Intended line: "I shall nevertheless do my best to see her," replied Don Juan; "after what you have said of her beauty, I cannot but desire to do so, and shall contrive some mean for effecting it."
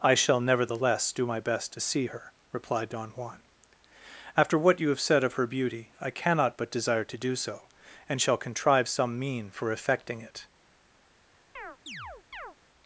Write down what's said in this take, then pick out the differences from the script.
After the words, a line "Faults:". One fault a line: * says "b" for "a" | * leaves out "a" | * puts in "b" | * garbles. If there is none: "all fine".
"I shall nevertheless do my best to see her," replied Don Juan; "after what you have said of her beauty, I cannot but desire to do so, and shall contrive some mean for effecting it."
Faults:
all fine